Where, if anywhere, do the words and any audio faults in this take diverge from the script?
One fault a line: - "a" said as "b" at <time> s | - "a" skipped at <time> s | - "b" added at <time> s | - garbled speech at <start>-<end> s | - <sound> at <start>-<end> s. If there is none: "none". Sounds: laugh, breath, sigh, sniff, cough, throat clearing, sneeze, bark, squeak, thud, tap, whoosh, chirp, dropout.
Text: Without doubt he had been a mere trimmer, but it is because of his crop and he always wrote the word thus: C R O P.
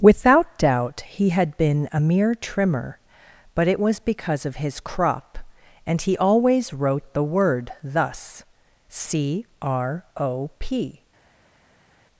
- "is" said as "was" at 3.8 s